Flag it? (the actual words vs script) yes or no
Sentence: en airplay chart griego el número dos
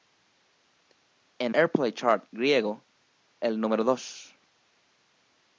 no